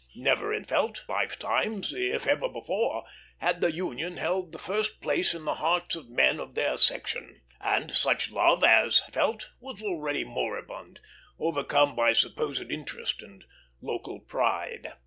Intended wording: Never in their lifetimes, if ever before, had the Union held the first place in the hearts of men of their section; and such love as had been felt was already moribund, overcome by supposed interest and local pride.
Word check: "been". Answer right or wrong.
wrong